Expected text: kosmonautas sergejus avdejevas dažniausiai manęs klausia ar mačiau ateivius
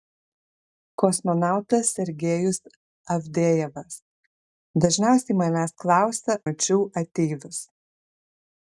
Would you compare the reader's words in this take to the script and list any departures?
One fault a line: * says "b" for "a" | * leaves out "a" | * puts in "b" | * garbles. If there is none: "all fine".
* leaves out "ar"